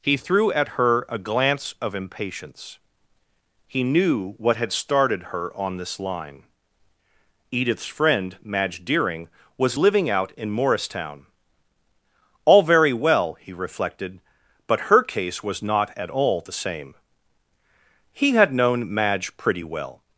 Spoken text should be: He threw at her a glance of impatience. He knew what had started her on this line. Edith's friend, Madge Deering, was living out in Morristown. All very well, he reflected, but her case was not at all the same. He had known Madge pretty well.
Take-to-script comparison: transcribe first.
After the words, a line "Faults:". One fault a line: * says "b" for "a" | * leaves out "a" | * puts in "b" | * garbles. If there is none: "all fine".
He threw at her a glance of impatience. He knew what had started her on this line. Edith's friend, Madge Deering, was living out in Morristown. All very well, he reflected, but her case was not at all the same. He had known Madge pretty well.
Faults:
all fine